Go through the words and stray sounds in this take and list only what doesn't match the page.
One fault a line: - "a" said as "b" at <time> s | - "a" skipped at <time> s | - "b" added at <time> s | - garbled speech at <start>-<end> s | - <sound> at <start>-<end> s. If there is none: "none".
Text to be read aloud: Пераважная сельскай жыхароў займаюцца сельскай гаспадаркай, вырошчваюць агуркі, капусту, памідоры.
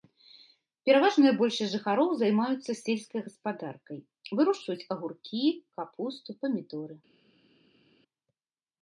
- "сельскай" said as "большасць" at 1.4 s